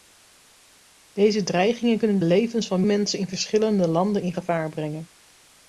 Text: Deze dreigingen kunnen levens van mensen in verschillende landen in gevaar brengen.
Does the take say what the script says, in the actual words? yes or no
yes